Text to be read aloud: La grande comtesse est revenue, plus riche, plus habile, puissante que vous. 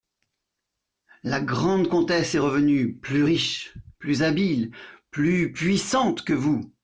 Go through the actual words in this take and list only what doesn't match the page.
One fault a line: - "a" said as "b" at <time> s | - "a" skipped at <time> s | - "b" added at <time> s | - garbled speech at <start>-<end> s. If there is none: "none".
- "plus" added at 5.1 s